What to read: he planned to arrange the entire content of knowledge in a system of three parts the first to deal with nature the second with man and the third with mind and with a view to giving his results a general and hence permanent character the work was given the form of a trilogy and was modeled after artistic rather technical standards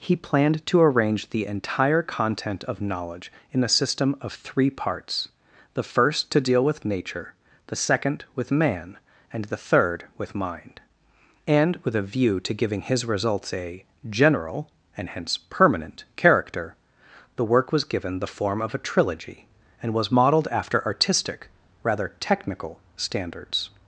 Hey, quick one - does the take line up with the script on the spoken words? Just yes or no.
yes